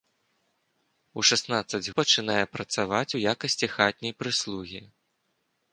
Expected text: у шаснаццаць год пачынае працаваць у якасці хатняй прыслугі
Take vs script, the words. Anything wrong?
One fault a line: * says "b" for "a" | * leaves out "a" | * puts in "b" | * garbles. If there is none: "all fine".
* leaves out "год"